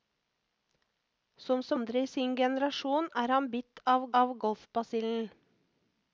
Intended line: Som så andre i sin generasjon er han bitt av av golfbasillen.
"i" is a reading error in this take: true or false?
false